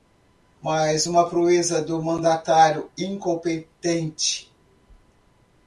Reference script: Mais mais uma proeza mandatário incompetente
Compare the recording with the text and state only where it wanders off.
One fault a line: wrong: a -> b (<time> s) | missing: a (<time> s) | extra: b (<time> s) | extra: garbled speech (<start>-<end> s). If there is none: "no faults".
missing: mais (1.1 s)
extra: do (1.8 s)